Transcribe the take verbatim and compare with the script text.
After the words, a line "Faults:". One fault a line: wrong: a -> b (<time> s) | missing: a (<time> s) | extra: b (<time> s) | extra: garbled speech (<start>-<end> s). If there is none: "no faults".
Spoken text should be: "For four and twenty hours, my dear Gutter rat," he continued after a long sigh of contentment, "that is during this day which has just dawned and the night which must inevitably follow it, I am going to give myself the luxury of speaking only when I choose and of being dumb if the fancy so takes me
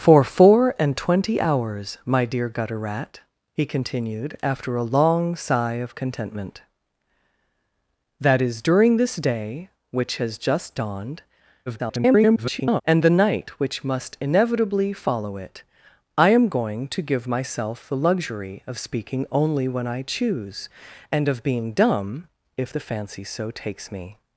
"For four and twenty hours, my dear Gutter rat," he continued after a long sigh of contentment, "that is during this day which has just dawned [garbled] and the night which must inevitably follow it, I am going to give myself the luxury of speaking only when I choose and of being dumb if the fancy so takes me
Faults:
extra: garbled speech (11.7-12.8 s)